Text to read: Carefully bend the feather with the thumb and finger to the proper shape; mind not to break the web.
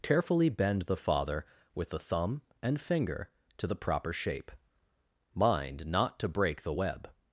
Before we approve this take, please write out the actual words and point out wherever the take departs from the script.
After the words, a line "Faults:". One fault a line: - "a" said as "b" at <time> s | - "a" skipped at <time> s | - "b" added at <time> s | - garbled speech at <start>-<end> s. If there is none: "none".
Carefully bend the father with the thumb and finger to the proper shape; mind not to break the web.
Faults:
- "feather" said as "father" at 1.0 s